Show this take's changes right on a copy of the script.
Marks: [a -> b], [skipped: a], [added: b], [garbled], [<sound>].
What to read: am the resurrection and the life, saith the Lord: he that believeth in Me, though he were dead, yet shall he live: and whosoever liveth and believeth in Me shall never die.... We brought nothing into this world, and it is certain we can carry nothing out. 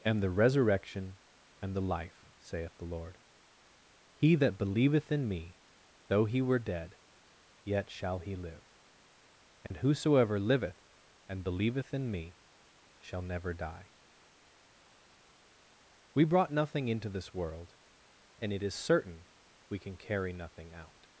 am the resurrection and the life, saith the Lord: he that believeth in Me, though he were dead, yet shall he live: and [dropout] whosoever liveth and believeth in Me shall never die.... We brought nothing into this world, and it is certain we can carry nothing out.